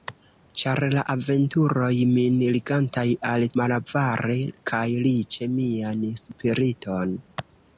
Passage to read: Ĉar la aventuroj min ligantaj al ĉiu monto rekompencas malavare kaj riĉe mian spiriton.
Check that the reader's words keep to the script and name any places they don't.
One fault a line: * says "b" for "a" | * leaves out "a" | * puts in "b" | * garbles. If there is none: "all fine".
* leaves out "ĉiu monto rekompencas"